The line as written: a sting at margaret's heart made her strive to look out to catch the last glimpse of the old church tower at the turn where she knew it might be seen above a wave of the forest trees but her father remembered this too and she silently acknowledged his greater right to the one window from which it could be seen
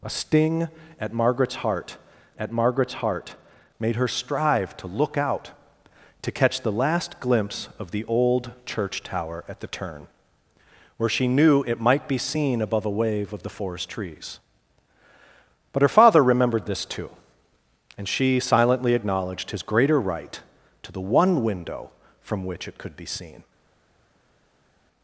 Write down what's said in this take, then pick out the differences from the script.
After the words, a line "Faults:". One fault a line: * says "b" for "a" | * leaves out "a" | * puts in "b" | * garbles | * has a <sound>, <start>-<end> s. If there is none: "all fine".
a sting at margaret's heart at margaret's heart made her strive to look out to catch the last glimpse of the old church tower at the turn where she knew it might be seen above a wave of the forest trees but her father remembered this too and she silently acknowledged his greater right to the one window from which it could be seen
Faults:
* puts in "at margaret's heart"